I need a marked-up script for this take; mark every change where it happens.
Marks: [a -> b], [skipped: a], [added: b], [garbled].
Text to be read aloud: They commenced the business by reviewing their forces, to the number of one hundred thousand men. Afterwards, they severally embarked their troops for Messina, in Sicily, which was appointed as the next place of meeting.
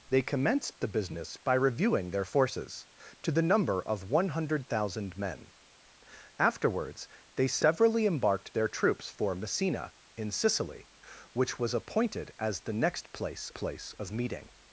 They commenced the business by reviewing their forces, to the number of one hundred thousand men. Afterwards, they severally embarked their troops for Messina, in Sicily, which was appointed as the next place [added: place] of meeting.